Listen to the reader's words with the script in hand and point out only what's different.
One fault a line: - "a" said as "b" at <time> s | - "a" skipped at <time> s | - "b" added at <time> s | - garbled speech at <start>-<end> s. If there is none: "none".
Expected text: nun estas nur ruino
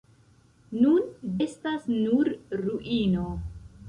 none